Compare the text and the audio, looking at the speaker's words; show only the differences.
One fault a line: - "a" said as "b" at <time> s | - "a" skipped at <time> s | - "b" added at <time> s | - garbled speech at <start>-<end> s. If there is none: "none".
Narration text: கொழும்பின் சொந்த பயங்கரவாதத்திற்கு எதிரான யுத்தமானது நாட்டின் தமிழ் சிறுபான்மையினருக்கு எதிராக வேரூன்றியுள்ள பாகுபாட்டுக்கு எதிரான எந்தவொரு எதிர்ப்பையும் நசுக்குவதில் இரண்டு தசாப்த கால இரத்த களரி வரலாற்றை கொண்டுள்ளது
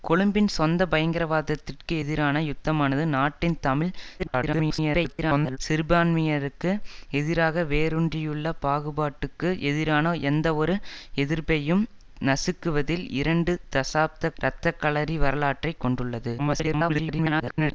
- garbled speech at 4.2-5.6 s
- "கால" skipped at 14.3 s
- garbled speech at 16.4-17.7 s